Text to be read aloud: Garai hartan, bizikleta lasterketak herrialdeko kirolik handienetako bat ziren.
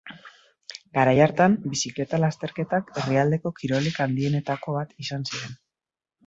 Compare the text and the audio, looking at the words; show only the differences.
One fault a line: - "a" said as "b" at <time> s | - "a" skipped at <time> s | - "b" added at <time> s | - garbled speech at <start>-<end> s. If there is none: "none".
- "izan" added at 5.1 s